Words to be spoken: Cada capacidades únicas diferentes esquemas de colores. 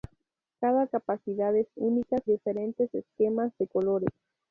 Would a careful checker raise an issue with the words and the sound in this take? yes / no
no